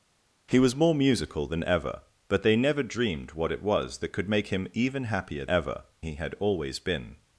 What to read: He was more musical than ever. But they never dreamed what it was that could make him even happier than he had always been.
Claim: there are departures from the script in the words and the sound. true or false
true